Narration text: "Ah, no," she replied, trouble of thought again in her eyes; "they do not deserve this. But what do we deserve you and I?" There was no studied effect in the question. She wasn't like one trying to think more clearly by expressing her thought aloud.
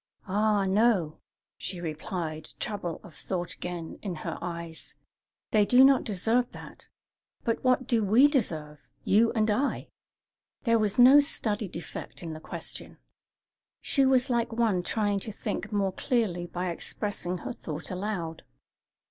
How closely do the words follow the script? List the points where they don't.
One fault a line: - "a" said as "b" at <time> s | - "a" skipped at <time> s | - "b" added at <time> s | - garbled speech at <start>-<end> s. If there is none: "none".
- "this" said as "that" at 6.5 s
- "wasn't" said as "was" at 14.0 s